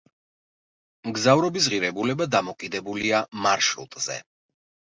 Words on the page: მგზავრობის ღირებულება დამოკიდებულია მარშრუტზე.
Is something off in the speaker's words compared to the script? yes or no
no